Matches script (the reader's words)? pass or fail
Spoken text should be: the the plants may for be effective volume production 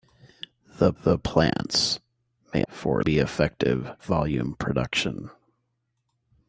pass